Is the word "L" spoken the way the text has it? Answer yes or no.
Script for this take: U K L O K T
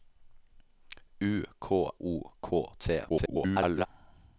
no